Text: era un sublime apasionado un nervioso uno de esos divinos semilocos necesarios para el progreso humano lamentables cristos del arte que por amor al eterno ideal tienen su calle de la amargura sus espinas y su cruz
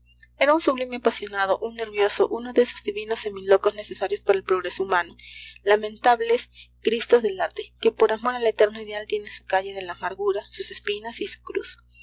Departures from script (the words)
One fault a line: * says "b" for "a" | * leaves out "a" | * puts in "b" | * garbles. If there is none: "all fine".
all fine